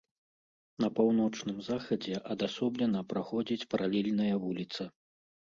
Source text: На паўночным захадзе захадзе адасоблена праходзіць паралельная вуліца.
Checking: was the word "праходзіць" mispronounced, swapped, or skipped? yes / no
no